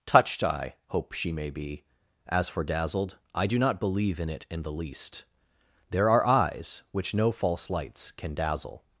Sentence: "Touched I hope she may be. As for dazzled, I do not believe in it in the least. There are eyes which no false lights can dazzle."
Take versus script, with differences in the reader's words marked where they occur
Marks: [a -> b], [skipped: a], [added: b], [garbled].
"Touched I hope she may be. As for dazzled, I do not believe in it in the least. There are eyes which no false lights can dazzle."